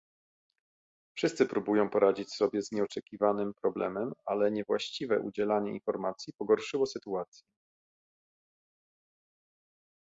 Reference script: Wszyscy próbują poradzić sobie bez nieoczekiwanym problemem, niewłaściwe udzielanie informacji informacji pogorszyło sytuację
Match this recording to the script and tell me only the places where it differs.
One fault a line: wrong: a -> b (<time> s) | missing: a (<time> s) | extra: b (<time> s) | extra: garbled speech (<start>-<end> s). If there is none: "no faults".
wrong: bez -> z (2.6 s)
extra: ale (4.3 s)
missing: informacji (6.3 s)